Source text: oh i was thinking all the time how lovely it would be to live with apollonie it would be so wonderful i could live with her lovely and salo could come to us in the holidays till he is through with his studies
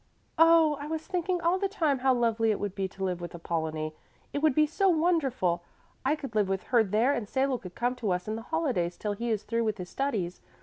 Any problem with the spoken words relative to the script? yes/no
yes